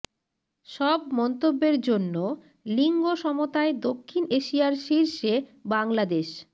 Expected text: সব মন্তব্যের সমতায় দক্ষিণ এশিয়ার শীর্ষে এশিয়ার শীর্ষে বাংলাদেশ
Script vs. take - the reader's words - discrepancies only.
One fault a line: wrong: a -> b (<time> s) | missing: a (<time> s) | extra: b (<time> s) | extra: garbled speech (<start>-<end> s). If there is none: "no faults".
extra: জন্য লিঙ্গ (1.8 s)
missing: এশিয়ার শীর্ষে (5.3 s)